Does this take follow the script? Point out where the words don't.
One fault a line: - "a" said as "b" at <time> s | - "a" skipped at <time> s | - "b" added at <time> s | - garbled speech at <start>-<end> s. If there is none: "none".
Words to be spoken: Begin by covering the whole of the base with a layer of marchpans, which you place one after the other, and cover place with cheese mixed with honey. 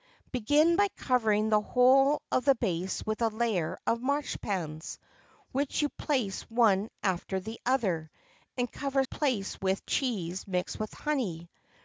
none